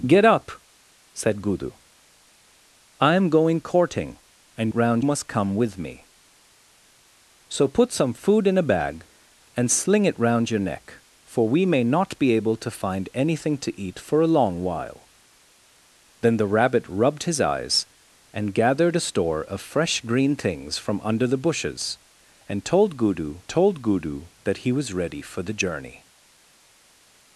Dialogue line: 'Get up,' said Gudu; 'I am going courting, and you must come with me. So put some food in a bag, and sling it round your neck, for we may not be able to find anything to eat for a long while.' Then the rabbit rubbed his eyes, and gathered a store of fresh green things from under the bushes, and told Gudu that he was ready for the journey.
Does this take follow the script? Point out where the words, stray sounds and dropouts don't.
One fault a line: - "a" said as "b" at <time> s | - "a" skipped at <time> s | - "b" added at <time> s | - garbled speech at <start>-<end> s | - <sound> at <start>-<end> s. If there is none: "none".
- "you" said as "round" at 4.7 s
- "told Gudu" added at 23.5 s